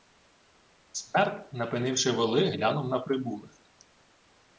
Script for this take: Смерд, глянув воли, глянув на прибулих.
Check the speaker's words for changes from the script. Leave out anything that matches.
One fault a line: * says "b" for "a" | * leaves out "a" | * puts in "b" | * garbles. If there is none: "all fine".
* says "напинивши" for "глянув"